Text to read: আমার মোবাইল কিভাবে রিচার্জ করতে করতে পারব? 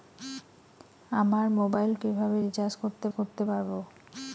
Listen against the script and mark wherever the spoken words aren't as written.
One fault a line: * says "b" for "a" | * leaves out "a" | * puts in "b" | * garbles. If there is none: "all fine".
all fine